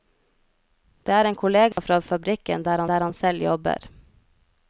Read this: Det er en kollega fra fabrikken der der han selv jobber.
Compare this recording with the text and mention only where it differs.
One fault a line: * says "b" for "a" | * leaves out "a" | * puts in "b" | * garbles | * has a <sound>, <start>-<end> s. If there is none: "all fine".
* has a dropout, 1.7-1.8 s